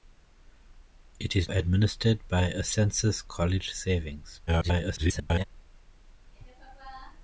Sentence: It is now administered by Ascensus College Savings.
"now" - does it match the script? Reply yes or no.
no